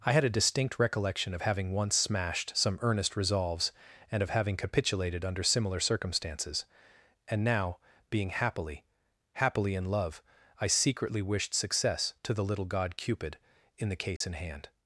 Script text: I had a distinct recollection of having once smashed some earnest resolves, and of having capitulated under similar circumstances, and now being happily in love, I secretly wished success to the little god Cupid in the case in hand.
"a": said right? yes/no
yes